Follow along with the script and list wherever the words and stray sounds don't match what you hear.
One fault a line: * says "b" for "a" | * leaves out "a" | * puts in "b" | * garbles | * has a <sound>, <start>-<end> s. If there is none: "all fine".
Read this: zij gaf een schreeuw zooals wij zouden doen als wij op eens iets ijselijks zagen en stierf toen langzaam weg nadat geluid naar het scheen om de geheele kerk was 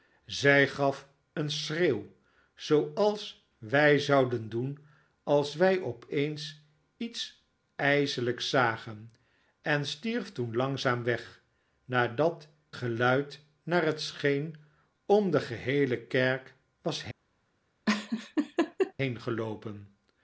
* has a laugh, 17.9-18.9 s